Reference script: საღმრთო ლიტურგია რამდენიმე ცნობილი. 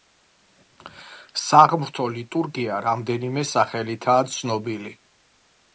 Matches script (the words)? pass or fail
fail